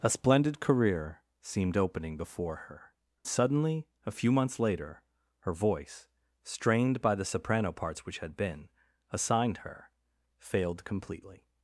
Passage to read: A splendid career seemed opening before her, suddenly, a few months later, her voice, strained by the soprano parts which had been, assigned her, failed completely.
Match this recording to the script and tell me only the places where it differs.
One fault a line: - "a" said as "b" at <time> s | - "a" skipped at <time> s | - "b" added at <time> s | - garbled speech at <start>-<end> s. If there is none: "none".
none